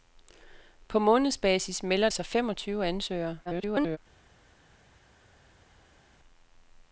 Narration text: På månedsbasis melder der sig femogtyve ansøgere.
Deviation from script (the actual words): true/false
true